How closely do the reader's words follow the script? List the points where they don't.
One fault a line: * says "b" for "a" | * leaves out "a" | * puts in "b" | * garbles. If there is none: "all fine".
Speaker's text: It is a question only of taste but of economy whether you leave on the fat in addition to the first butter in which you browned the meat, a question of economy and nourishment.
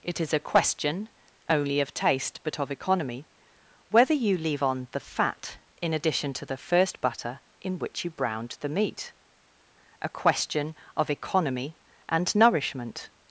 all fine